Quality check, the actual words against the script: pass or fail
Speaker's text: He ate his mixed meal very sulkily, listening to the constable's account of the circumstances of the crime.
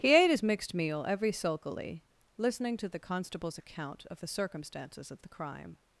fail